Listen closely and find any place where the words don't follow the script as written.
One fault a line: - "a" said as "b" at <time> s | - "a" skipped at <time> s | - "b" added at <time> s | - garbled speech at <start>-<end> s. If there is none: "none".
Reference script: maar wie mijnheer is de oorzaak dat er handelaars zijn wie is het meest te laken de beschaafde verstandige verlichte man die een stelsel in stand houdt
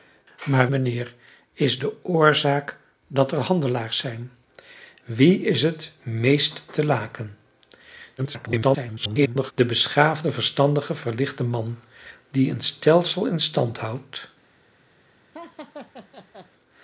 - "wie" skipped at 0.7 s
- garbled speech at 8.2-9.5 s